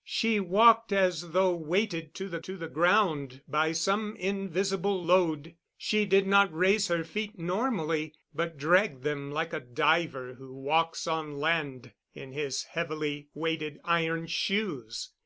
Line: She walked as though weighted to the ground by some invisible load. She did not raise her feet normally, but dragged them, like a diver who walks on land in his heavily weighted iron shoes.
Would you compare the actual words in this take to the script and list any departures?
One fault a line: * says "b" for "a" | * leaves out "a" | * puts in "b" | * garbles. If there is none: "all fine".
* puts in "to the"